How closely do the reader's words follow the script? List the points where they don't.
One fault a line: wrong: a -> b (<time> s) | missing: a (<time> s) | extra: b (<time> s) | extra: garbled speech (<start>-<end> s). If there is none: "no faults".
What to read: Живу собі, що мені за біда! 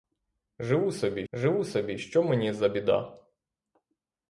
extra: живу собі (1.3 s)